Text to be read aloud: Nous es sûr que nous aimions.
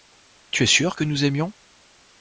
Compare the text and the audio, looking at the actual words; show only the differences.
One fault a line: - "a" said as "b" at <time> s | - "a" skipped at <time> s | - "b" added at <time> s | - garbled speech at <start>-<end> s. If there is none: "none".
- "Nous" said as "Tu" at 0.5 s